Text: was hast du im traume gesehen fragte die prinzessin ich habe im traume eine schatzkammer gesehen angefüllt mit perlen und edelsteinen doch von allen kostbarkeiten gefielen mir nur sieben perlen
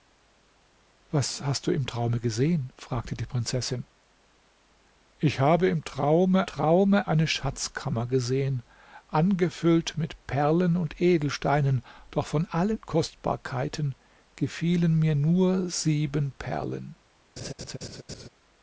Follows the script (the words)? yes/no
no